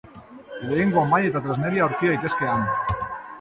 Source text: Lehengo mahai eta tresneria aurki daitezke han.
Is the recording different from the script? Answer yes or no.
no